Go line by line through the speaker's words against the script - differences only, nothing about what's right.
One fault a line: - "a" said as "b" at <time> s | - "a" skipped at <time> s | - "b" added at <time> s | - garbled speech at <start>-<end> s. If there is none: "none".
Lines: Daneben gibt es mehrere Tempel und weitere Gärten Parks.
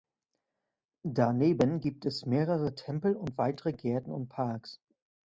- "und" added at 4.1 s